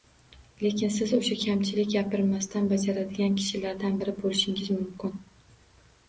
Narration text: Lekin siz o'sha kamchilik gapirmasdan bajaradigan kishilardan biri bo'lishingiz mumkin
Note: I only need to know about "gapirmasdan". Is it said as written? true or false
true